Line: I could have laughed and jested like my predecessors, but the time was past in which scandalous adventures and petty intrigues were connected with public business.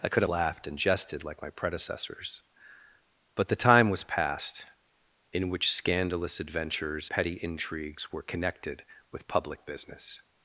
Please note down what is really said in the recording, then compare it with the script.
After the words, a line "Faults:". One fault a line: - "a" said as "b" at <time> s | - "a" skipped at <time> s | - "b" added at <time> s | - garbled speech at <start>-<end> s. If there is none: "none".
I could laughed and jested like my predecessors, but the time was past in which scandalous adventures petty intrigues were connected with public business.
Faults:
- "have" skipped at 0.2 s
- "and" skipped at 7.1 s